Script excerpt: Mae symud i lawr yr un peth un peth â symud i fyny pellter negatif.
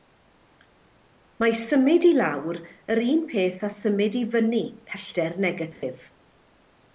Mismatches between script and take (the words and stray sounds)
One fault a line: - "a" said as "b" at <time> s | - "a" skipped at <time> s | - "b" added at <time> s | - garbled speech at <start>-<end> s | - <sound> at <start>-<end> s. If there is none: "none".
- "un peth" skipped at 3.7 s
- dropout at 5.7-5.8 s